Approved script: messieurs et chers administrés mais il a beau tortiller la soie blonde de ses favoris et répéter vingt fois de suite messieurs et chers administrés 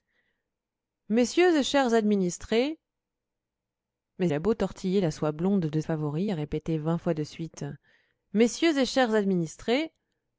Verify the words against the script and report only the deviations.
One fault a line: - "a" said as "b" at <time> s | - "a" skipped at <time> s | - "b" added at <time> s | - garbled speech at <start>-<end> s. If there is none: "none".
- "il" skipped at 4.3 s
- "ses" skipped at 5.8 s